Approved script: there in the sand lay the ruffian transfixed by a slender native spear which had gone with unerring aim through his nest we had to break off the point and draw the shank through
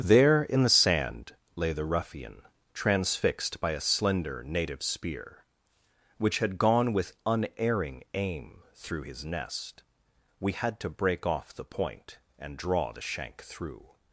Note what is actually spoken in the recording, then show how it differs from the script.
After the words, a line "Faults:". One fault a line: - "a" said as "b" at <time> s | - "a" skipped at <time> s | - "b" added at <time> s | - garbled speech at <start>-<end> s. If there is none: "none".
there in the sand lay the ruffian transfixed by a slender native spear which had gone with unerring aim through his nest we had to break off the point and draw the shank through
Faults:
none